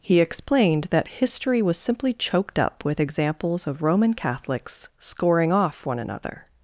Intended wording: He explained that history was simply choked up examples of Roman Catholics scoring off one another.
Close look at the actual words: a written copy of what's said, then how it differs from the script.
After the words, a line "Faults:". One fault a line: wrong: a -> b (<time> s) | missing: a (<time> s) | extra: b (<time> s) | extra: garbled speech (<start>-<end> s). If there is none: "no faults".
He explained that history was simply choked up with examples of Roman Catholics scoring off one another.
Faults:
extra: with (2.8 s)